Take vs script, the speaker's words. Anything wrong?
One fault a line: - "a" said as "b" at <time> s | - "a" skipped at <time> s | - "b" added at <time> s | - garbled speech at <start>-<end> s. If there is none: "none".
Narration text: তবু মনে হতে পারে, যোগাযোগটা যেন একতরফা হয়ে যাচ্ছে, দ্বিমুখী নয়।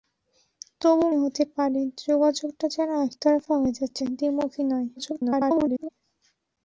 - "মনে" skipped at 1.1 s
- garbled speech at 5.0-5.9 s